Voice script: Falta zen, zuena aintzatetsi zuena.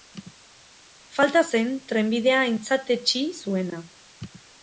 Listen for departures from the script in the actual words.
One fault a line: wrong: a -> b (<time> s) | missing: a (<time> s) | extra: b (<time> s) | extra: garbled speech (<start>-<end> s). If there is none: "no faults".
wrong: zuena -> trenbidea (1.9 s)